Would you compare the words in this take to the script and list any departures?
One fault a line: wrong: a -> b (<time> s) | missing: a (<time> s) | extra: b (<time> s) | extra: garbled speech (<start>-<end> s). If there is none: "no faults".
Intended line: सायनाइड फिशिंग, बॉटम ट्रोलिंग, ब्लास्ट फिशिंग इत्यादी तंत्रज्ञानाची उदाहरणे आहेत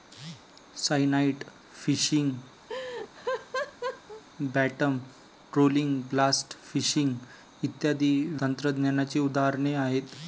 no faults